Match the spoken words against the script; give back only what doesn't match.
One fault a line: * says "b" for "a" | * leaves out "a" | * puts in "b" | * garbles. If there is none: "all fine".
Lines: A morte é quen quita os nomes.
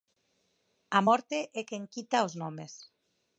all fine